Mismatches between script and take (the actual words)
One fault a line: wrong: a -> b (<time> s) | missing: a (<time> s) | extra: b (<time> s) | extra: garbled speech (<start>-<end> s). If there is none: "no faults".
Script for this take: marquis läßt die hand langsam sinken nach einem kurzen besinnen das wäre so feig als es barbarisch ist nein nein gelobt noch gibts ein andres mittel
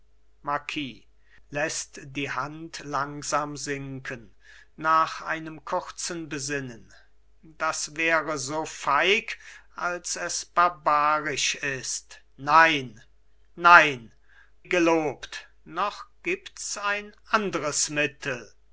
no faults